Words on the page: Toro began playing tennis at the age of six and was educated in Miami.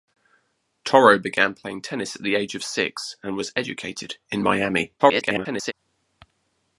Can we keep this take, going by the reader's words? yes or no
no